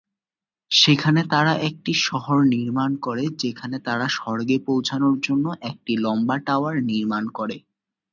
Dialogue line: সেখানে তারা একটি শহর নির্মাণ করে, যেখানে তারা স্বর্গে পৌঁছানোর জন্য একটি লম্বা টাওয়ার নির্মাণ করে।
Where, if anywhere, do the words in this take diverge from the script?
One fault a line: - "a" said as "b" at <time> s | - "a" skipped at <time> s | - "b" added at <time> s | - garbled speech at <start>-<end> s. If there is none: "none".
none